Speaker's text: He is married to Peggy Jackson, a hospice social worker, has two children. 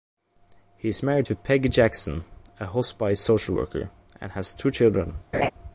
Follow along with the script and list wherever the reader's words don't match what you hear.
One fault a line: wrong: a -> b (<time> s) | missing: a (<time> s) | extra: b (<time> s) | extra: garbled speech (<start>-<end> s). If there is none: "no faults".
extra: and (4.2 s)